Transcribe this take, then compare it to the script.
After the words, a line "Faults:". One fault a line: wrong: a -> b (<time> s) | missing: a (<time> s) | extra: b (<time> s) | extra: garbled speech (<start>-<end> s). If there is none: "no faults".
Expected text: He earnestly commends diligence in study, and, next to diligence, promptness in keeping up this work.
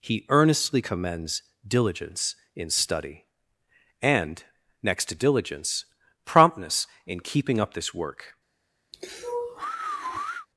He earnestly commends diligence in study, and, next to diligence, promptness in keeping up this work.
Faults:
no faults